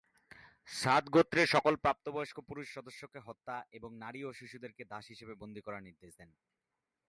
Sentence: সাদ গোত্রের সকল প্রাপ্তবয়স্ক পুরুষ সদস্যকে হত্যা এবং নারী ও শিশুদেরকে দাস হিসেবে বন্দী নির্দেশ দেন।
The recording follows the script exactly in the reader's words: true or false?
false